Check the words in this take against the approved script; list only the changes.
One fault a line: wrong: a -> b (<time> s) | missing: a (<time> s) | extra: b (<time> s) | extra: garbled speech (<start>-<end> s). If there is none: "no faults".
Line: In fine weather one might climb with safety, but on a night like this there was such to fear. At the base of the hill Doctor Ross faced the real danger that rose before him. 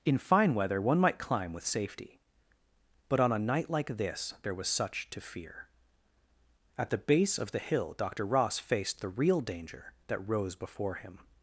no faults